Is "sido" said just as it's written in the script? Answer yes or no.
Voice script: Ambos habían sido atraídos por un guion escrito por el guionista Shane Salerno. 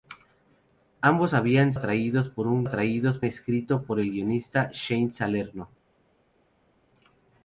no